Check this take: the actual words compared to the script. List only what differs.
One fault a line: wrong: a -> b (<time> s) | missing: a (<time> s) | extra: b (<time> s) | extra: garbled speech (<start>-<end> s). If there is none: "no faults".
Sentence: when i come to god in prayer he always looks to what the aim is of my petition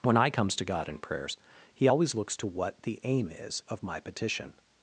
wrong: come -> comes (0.3 s)
wrong: prayer -> prayers (1.0 s)